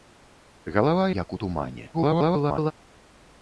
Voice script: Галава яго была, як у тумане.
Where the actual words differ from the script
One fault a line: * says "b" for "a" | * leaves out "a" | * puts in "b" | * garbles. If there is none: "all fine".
* leaves out "яго была"
* garbles